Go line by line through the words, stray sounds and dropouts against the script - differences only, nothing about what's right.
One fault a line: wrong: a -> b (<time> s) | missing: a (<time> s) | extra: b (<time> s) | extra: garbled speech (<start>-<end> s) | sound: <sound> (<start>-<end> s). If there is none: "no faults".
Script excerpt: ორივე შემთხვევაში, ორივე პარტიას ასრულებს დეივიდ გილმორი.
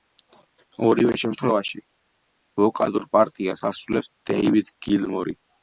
wrong: ორივე -> ვოკალურ (2.6 s)